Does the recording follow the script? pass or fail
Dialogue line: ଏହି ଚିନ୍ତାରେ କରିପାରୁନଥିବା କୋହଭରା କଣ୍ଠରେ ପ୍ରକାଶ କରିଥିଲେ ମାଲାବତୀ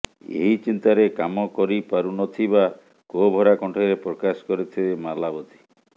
fail